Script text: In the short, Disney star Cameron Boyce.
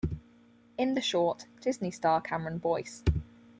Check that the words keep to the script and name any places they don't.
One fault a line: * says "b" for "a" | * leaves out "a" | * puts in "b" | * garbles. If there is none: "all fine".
all fine